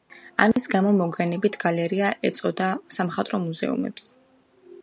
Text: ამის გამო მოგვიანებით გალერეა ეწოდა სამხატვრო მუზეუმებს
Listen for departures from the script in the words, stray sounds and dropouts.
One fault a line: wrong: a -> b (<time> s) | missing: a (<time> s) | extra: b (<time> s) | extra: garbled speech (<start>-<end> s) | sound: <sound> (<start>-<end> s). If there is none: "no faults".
sound: dropout (0.5-0.6 s)